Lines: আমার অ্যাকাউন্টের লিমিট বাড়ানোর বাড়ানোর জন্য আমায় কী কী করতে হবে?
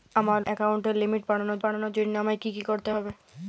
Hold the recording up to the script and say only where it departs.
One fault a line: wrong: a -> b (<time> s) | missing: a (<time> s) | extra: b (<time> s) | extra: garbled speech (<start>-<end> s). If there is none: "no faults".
no faults